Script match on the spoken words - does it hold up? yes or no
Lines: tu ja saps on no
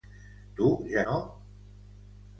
no